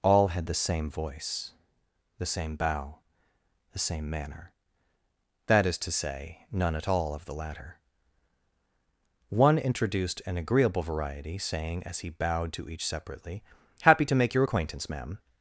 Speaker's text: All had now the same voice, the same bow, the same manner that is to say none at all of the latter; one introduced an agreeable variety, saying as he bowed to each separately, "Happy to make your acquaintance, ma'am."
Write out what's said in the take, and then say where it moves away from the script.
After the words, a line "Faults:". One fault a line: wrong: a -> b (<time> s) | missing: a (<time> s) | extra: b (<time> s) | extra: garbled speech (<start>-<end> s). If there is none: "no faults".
All had the same voice, the same bow, the same manner that is to say none at all of the latter; one introduced an agreeable variety, saying as he bowed to each separately, "Happy to make your acquaintance, ma'am."
Faults:
missing: now (0.5 s)